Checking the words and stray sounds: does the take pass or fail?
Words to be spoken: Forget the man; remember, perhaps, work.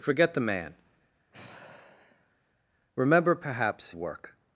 fail